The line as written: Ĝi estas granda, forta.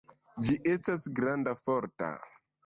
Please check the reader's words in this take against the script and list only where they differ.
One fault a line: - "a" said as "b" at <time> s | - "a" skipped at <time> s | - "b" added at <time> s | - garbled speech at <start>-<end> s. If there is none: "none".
none